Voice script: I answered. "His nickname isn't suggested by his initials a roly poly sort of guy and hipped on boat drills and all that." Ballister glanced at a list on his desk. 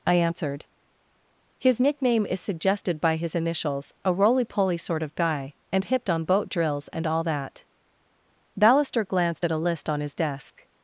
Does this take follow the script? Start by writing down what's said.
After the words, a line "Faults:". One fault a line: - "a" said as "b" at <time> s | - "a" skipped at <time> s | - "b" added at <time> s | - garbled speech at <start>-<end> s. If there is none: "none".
I answered. "His nickname is suggested by his initials a roly poly sort of guy and hipped on boat drills and all that." Ballister glanced at a list on his desk.
Faults:
- "isn't" said as "is" at 2.2 s